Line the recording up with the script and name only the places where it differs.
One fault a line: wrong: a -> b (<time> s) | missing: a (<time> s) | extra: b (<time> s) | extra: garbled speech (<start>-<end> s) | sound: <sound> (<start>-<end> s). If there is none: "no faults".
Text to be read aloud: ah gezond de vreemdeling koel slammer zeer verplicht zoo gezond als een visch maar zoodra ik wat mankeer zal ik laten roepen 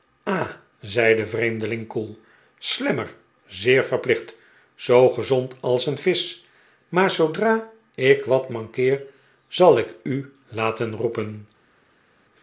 wrong: gezond -> zei (0.8 s)
extra: u (10.0 s)